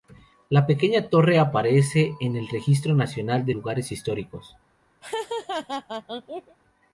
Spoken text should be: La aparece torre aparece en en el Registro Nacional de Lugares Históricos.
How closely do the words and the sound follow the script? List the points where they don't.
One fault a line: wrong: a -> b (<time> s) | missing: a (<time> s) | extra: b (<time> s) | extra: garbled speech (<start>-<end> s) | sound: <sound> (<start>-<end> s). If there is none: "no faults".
wrong: aparece -> pequeña (0.7 s)
missing: en (2.4 s)
sound: laugh (5.0-6.6 s)